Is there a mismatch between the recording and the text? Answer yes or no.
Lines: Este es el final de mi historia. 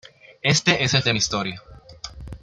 yes